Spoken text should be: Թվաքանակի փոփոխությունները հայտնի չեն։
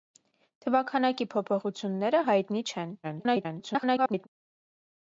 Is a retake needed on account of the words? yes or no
yes